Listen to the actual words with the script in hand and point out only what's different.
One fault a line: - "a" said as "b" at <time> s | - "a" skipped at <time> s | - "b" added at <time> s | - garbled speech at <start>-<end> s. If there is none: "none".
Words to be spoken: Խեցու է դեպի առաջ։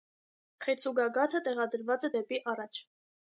- "գագաթը տեղադրված" added at 1.0 s